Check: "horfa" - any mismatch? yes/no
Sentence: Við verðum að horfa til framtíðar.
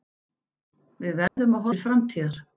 yes